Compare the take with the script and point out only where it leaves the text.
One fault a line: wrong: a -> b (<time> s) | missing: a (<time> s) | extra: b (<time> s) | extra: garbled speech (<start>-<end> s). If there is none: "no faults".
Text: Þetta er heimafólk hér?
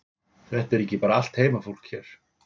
extra: ekki bara allt (0.8 s)